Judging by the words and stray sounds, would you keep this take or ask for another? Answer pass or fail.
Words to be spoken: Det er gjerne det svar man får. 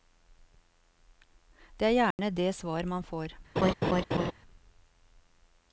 fail